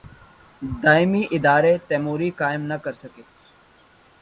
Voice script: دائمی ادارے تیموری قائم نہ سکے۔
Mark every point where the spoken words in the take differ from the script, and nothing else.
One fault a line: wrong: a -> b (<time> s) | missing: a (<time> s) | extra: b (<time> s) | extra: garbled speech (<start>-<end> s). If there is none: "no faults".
extra: کر (2.8 s)